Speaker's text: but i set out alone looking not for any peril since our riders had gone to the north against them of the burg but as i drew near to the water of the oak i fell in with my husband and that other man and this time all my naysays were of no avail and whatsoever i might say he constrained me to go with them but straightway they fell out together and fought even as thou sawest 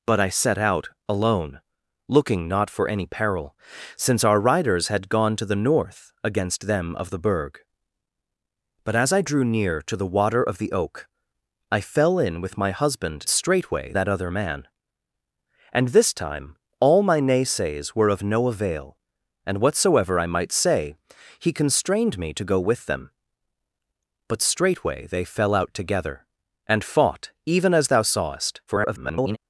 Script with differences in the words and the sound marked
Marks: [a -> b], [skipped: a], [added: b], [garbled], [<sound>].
but i set out alone looking not for any peril since our riders had gone to the north against them of the burg but as i drew near to the water of the oak i fell in with my husband [and -> straightway] that other man and this time all my naysays were of no avail and whatsoever i might say he constrained me to go with them but straightway they fell out together and fought even as thou sawest [garbled]